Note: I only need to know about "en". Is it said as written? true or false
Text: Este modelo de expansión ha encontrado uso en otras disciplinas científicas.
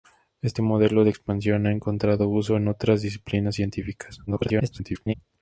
true